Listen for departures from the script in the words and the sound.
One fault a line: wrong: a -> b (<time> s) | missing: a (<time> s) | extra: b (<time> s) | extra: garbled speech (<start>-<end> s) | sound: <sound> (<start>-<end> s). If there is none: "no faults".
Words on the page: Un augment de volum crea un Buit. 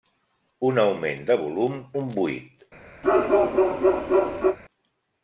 missing: crea (1.8 s)
sound: bark (3.0-4.6 s)